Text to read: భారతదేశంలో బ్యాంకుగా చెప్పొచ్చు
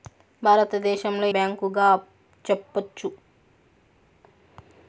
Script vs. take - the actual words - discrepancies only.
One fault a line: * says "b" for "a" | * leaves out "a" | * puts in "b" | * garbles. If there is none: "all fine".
all fine